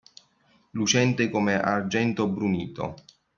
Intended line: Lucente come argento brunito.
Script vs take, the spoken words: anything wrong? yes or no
no